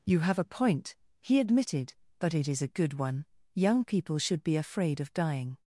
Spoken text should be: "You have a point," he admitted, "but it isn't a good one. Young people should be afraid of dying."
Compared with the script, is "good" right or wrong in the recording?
right